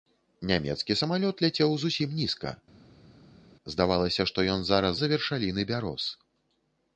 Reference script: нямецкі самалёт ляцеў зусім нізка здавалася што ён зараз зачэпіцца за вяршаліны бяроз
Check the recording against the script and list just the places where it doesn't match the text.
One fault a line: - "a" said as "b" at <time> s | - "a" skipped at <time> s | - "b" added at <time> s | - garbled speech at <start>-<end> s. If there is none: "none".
- "зачэпіцца" skipped at 4.9 s